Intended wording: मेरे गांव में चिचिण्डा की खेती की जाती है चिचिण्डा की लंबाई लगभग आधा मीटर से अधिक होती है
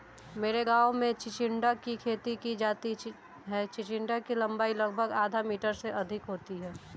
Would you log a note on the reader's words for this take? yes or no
no